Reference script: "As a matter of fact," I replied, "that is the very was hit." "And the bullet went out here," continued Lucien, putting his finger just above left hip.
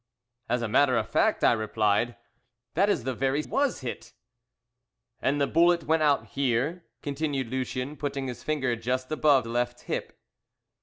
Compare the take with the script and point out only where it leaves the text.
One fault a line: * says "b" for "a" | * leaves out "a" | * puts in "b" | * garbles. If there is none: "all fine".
all fine